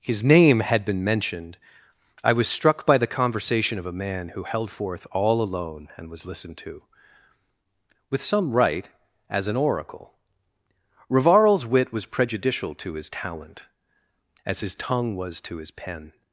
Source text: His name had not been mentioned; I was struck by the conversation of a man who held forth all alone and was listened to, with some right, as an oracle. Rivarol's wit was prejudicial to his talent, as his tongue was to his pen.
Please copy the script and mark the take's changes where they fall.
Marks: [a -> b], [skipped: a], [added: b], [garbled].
His name had [skipped: not] been mentioned; I was struck by the conversation of a man who held forth all alone and was listened to, with some right, as an oracle. Rivarol's wit was prejudicial to his talent, as his tongue was to his pen.